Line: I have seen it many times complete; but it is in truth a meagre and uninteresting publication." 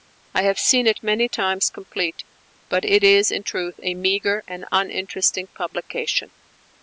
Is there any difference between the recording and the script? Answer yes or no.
no